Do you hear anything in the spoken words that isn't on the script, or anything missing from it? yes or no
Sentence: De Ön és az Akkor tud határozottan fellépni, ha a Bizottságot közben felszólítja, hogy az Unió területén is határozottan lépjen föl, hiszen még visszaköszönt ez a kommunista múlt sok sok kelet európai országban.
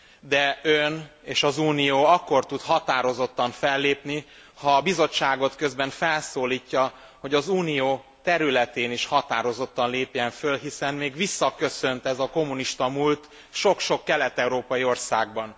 yes